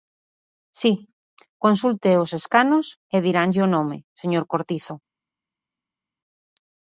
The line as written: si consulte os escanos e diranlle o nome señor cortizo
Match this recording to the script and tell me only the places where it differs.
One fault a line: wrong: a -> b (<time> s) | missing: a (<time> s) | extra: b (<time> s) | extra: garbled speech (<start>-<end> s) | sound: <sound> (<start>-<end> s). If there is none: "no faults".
no faults